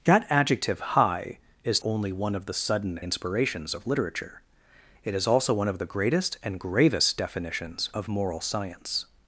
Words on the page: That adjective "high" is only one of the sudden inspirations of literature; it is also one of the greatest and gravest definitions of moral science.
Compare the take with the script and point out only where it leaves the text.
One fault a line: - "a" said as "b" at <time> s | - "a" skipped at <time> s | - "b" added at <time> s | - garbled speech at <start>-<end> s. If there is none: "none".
none